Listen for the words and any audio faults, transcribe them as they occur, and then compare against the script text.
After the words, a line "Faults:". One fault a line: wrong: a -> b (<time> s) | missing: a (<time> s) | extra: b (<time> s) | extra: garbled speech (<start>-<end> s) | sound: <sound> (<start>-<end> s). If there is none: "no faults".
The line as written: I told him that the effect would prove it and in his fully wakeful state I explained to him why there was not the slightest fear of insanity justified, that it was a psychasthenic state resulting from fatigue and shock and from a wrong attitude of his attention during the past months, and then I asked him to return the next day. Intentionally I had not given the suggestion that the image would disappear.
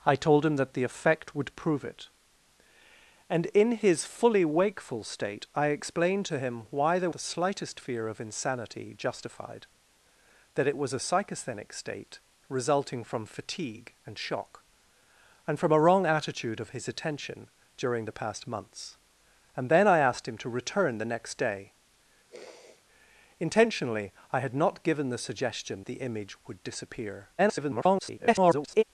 I told him that the effect would prove it and in his fully wakeful state I explained to him why there the slightest fear of insanity justified, that it was a psychasthenic state resulting from fatigue and shock and from a wrong attitude of his attention during the past months, and then I asked him to return the next day. Intentionally I had not given the suggestion the image would disappear. [garbled]
Faults:
missing: was not (7.1 s)
sound: sniff (22.3-22.8 s)
missing: that (25.8 s)
extra: garbled speech (27.4-28.8 s)